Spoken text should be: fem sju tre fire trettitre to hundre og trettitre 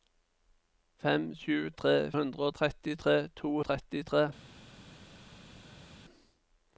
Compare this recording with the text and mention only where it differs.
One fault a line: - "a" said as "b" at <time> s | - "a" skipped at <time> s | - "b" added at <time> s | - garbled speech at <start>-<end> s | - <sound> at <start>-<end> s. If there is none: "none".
- "fire" said as "hundre" at 2.2 s
- "hundre" skipped at 3.6 s